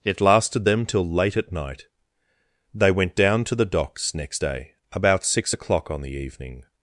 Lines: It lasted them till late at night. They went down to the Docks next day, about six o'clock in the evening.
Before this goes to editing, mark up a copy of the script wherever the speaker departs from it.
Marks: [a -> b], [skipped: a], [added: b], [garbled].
It lasted them till late at night. They went down to the Docks next day, about six o'clock [in -> on] the evening.